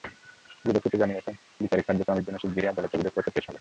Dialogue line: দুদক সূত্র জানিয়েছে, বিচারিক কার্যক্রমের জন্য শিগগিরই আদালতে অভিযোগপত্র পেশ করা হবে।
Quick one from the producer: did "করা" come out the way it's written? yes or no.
no